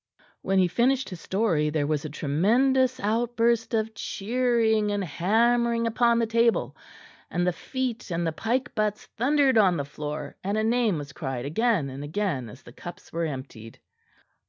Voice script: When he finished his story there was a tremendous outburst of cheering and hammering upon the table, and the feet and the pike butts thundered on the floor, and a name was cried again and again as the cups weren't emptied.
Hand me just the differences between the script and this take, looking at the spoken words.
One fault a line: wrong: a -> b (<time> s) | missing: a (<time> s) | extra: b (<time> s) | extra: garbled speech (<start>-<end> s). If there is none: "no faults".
wrong: weren't -> were (13.1 s)